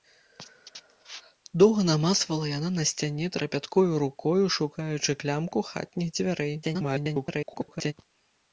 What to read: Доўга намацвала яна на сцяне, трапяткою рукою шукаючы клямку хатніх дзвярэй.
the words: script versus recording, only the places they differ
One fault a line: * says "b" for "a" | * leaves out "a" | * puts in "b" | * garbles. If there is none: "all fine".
* garbles